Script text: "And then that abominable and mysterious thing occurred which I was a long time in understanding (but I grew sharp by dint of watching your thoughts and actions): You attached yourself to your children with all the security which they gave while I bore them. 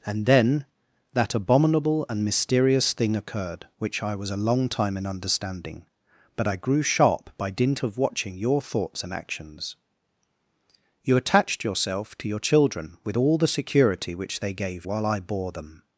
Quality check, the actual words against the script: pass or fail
pass